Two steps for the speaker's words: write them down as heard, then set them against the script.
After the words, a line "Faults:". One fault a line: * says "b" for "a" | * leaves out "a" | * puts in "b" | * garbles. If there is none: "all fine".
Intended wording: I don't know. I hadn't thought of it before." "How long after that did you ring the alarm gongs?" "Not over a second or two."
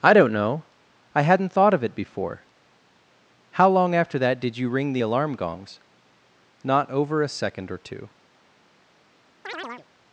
I don't know. I hadn't thought of it before." "How long after that did you ring the alarm gongs?" "Not over a second or two."
Faults:
all fine